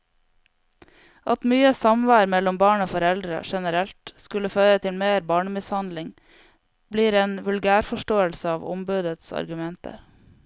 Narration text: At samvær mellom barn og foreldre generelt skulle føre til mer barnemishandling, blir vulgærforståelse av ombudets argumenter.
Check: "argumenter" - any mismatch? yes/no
no